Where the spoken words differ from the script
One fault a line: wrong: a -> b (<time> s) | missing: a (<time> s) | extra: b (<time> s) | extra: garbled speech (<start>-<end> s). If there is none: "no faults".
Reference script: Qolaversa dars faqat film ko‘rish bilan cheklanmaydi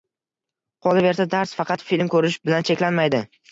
no faults